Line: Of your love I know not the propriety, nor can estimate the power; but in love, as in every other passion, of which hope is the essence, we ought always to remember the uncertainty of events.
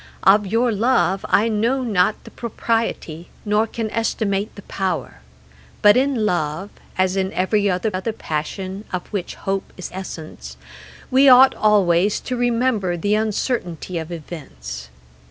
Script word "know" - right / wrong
right